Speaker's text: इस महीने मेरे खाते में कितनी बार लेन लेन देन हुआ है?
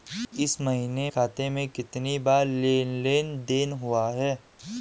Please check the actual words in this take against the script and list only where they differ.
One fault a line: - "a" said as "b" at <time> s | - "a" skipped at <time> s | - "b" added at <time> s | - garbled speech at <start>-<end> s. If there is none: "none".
- "मेरे" skipped at 1.1 s